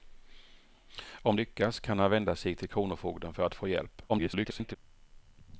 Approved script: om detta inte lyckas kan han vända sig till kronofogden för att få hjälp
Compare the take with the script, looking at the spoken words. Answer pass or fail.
fail